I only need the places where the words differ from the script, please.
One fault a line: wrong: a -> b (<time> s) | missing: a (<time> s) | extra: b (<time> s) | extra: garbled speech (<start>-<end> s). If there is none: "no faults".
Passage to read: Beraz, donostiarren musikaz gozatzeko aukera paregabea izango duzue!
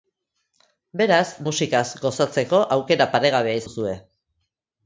missing: donostiarren (1.3 s)
missing: izango (3.6 s)